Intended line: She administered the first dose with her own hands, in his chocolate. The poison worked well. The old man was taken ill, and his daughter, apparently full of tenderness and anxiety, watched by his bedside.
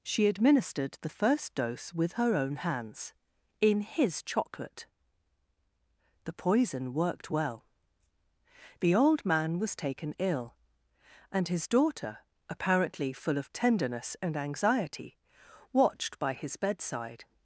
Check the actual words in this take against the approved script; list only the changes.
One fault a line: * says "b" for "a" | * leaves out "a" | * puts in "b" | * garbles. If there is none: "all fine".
all fine